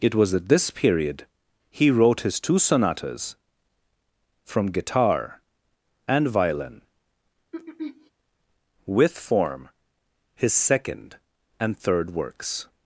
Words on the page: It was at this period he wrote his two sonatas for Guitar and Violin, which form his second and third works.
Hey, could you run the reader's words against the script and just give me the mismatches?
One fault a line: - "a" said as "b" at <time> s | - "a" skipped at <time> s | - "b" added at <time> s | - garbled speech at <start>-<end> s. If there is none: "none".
- "for" said as "from" at 4.4 s
- "which" said as "with" at 8.9 s